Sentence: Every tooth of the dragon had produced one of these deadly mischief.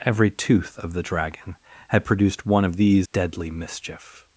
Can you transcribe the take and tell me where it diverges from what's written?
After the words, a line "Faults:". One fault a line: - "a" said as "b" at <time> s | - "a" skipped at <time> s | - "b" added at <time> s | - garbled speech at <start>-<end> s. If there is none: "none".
Every tooth of the dragon had produced one of these deadly mischief.
Faults:
none